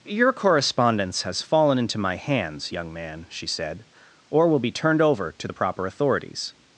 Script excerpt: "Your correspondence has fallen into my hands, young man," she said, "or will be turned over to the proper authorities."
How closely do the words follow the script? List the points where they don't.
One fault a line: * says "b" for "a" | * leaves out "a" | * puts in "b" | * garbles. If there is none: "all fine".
all fine